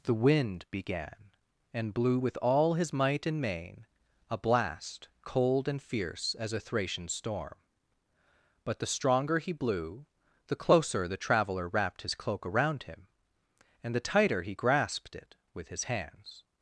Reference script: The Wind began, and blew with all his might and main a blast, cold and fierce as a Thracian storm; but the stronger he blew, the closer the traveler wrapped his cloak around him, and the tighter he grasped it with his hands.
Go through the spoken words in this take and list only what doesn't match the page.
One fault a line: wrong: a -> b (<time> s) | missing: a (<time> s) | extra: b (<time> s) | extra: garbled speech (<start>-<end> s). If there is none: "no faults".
no faults